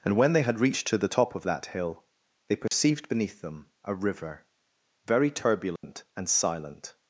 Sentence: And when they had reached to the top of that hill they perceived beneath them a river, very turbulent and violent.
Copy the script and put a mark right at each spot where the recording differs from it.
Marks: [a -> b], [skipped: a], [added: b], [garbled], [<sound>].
And when they had reached to the top of that hill they perceived [dropout] beneath them a river, very turbulent [dropout] and [violent. -> silent]